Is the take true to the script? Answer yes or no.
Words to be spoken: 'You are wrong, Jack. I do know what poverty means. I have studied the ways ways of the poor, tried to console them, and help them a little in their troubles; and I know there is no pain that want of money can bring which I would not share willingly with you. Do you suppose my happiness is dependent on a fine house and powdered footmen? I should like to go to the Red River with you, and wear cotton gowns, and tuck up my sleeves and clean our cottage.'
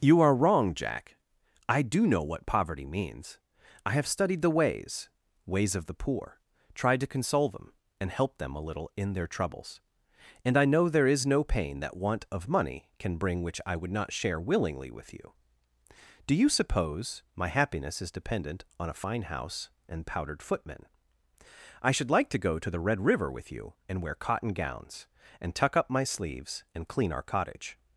yes